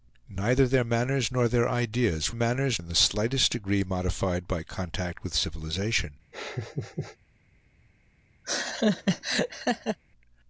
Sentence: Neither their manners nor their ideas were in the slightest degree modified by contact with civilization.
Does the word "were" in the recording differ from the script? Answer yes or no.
yes